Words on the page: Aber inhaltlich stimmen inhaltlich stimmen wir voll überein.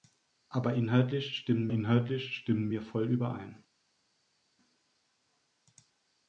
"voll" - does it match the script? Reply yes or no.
yes